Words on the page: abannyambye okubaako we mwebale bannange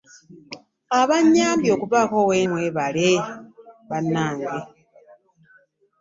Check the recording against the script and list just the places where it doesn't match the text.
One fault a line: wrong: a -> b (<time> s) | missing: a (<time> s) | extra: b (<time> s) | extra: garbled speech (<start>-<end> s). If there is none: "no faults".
no faults